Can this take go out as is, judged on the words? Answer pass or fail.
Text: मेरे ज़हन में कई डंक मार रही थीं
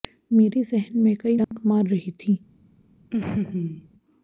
pass